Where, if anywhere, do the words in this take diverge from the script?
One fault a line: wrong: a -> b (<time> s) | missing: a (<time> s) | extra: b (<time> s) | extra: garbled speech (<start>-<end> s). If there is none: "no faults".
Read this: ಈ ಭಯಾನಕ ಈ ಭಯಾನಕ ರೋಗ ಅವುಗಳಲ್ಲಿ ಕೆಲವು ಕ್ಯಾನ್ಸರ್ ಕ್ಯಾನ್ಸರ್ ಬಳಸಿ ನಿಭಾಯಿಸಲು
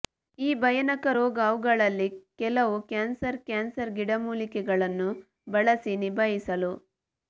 missing: ಈ ಭಯಾನಕ (1.1 s)
extra: ಗಿಡಮೂಲಿಕೆಗಳನ್ನು (4.0 s)